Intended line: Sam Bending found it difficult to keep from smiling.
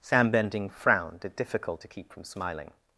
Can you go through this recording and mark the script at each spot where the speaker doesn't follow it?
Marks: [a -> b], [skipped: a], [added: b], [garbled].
Sam Bending [found -> frowned] it difficult to keep from smiling.